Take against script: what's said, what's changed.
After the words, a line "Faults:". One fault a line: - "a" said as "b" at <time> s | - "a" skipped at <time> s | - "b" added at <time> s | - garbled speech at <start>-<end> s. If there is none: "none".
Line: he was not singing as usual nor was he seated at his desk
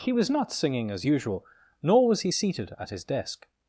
he was not singing as usual nor was he seated at his desk
Faults:
none